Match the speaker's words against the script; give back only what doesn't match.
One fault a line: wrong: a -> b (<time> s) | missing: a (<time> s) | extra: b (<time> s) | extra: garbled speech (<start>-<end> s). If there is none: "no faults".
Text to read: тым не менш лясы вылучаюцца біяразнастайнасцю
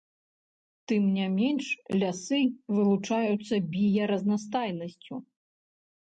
no faults